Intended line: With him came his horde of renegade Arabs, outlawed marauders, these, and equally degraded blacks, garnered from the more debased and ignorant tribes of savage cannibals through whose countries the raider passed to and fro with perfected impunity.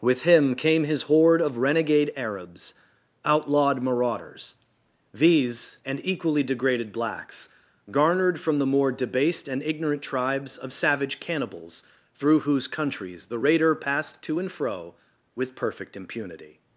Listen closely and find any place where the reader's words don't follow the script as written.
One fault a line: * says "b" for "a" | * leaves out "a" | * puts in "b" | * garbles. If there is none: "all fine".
* says "perfect" for "perfected"